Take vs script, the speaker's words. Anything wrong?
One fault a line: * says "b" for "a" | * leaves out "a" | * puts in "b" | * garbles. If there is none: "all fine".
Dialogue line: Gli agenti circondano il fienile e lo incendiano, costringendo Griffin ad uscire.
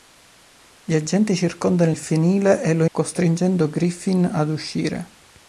* leaves out "incendiano"